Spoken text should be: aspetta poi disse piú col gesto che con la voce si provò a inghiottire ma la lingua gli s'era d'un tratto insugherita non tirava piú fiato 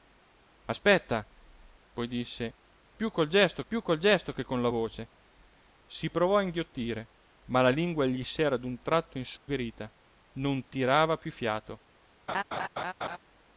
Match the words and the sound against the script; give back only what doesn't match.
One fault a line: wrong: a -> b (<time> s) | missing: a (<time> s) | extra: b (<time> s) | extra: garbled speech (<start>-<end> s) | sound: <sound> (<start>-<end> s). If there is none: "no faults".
extra: piú col gesto (3.7 s)
sound: dropout (9.4-9.5 s)
sound: laugh (12.3-13.2 s)